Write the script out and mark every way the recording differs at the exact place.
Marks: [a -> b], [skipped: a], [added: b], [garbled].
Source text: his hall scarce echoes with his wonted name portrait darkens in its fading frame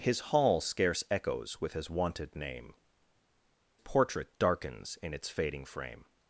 his hall scarce echoes with his wonted name portrait darkens in its fading frame